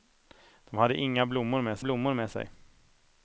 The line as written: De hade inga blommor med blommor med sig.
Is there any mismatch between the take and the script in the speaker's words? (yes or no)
no